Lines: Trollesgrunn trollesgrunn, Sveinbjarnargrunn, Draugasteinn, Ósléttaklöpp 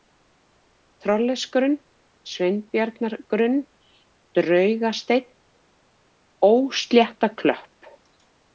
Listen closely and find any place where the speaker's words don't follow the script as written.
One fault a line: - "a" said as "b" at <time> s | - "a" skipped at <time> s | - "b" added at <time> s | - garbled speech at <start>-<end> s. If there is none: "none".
- "trollesgrunn" skipped at 1.8 s